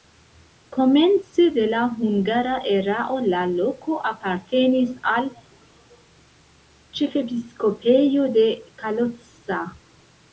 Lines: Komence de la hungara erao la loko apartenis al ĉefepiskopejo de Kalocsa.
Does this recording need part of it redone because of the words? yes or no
no